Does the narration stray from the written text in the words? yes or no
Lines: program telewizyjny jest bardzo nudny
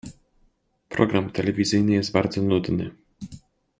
no